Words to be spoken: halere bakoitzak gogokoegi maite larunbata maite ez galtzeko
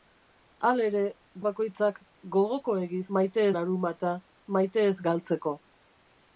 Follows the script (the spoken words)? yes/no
yes